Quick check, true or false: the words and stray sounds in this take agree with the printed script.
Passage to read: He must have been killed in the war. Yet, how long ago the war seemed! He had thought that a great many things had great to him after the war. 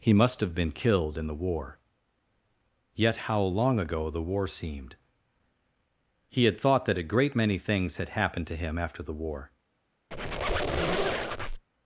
false